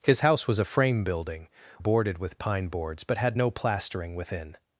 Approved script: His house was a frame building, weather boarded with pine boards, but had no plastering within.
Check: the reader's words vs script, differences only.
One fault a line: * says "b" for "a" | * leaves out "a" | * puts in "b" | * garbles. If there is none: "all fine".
* leaves out "weather"